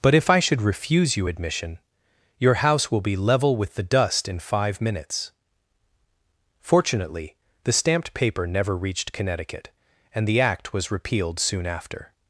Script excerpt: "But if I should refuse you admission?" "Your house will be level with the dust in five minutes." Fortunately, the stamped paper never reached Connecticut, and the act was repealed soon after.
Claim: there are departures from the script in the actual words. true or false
false